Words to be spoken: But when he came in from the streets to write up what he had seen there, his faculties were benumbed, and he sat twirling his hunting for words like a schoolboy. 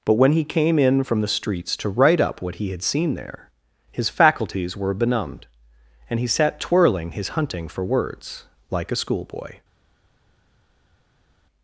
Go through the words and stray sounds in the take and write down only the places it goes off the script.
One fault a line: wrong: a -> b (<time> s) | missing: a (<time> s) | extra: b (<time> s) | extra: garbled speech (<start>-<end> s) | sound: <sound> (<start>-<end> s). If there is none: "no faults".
no faults